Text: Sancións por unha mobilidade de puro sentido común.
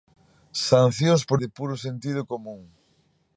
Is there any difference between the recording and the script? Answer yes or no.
yes